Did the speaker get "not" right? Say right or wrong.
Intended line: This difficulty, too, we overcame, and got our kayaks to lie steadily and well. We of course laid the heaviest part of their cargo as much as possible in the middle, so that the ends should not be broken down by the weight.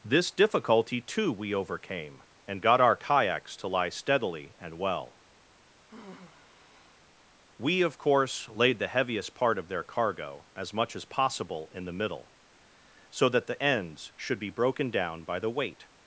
wrong